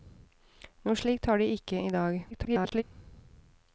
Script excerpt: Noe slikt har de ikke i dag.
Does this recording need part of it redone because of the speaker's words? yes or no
yes